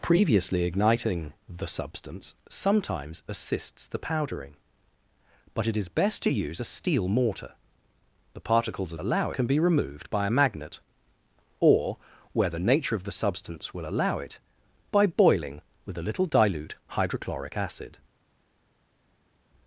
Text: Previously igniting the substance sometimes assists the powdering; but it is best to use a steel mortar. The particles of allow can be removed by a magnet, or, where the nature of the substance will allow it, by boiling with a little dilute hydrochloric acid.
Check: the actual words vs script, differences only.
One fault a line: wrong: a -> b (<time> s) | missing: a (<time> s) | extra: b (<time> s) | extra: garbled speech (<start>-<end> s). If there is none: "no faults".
no faults